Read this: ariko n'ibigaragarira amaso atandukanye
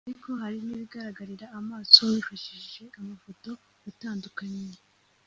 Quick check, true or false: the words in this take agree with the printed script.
false